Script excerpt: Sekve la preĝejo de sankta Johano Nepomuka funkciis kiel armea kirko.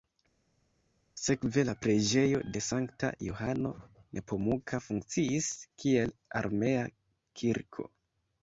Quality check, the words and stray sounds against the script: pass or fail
pass